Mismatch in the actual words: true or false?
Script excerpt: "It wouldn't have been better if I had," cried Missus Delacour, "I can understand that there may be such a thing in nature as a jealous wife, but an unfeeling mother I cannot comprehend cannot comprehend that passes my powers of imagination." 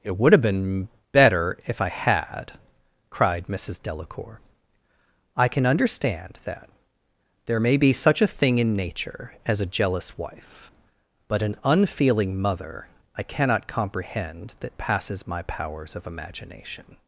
true